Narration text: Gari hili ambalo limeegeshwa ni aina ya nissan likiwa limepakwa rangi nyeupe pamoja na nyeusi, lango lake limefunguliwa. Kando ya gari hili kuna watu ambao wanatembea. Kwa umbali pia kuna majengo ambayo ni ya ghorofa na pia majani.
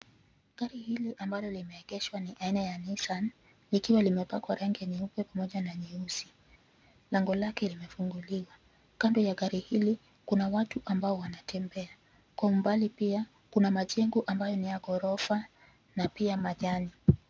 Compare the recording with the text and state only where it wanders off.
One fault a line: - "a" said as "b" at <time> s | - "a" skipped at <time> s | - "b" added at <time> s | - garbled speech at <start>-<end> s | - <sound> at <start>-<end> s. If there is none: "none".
none